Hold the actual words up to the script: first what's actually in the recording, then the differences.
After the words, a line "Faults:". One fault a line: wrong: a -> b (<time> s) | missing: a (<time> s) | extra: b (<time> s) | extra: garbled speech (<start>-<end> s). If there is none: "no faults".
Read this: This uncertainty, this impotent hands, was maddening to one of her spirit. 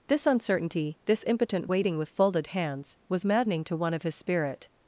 This uncertainty, this impotent waiting with folded hands, was maddening to one of his spirit.
Faults:
extra: waiting with folded (1.7 s)
wrong: her -> his (4.0 s)